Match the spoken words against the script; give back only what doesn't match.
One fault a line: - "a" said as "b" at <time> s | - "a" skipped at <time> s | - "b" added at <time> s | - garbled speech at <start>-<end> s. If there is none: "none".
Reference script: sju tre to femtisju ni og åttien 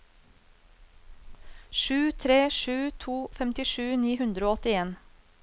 - "sju" added at 2.6 s
- "hundre" added at 4.2 s